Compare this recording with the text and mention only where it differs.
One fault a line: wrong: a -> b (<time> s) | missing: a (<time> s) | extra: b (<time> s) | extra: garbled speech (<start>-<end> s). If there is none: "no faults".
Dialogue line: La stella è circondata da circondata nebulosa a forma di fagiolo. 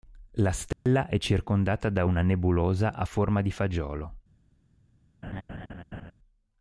wrong: circondata -> una (2.0 s)